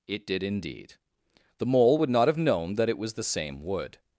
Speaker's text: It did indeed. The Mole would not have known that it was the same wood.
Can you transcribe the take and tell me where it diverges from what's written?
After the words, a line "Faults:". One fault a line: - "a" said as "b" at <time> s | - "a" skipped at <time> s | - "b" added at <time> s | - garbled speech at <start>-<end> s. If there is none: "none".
It did indeed. The Mole would not have known that it was the same wood.
Faults:
none